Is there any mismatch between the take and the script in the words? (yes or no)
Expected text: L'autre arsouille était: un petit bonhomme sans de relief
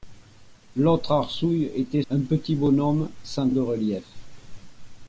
no